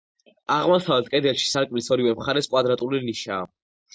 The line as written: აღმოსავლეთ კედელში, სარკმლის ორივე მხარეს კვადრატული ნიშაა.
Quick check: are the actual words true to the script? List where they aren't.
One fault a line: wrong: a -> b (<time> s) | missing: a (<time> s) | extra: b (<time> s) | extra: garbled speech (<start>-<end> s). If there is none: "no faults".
no faults